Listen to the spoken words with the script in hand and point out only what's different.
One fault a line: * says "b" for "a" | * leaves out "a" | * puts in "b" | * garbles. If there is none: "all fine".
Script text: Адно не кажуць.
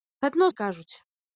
all fine